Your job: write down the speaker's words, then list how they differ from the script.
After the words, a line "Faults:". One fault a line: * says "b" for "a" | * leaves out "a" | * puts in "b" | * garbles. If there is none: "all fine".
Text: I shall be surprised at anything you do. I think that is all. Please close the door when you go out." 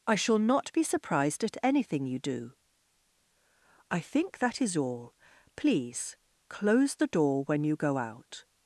I shall not be surprised at anything you do. I think that is all. Please close the door when you go out."
Faults:
* puts in "not"